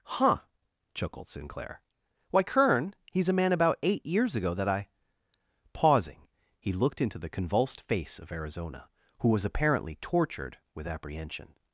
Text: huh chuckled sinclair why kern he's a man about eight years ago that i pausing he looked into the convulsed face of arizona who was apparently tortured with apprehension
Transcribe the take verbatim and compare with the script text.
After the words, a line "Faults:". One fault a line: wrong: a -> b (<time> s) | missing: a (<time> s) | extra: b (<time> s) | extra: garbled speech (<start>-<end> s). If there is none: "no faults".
huh chuckled sinclair why kern he's a man about eight years ago that i pausing he looked into the convulsed face of arizona who was apparently tortured with apprehension
Faults:
no faults